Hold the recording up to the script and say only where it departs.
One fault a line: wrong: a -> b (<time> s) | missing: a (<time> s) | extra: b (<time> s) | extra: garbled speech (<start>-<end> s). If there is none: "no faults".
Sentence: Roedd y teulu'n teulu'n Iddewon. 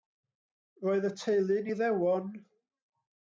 missing: teulu'n (1.7 s)